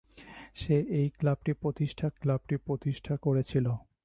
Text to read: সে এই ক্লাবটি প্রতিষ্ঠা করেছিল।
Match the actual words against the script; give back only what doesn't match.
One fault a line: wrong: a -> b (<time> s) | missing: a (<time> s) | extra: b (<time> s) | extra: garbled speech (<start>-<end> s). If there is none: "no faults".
extra: ক্লাবটি প্রতিষ্ঠা (2.2 s)